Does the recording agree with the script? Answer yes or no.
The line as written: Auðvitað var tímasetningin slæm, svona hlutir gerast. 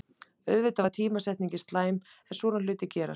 no